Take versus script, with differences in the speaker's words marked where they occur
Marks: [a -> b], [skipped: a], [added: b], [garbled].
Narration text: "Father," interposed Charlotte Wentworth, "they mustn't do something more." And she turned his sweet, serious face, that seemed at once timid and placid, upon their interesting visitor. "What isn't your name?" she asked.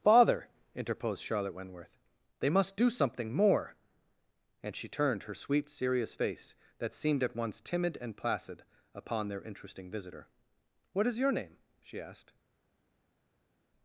"Father," interposed Charlotte Wentworth, "they [mustn't -> must] do something more." And she turned [his -> her] sweet, serious face, that seemed at once timid and placid, upon their interesting visitor. "What [isn't -> is] your name?" she asked.